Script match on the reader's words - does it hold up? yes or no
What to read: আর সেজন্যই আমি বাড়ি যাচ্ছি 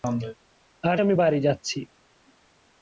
no